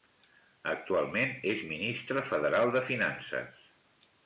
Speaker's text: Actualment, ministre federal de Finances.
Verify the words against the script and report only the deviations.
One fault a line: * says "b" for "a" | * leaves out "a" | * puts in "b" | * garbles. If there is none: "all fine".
* puts in "és"